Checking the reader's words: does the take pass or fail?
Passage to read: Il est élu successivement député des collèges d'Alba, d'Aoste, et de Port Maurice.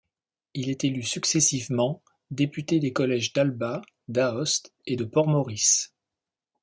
pass